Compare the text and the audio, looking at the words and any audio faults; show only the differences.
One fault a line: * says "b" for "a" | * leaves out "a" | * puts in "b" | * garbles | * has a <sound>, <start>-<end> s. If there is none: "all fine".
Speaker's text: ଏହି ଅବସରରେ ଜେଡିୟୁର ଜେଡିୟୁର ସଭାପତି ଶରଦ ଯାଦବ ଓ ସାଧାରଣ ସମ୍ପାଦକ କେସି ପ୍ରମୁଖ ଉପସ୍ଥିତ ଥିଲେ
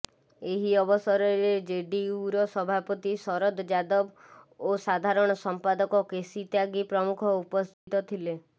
* leaves out "ଜେଡିୟୁର"
* puts in "ତ୍ୟାଗୀ"
* has a dropout, 7.7-7.9 s